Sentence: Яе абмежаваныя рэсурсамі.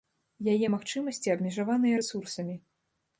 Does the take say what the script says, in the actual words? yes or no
no